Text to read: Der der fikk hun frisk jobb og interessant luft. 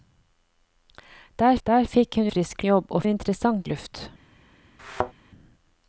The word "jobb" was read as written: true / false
true